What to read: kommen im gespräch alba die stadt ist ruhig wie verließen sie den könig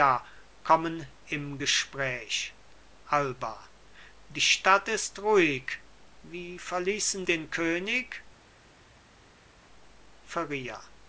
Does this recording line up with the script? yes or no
no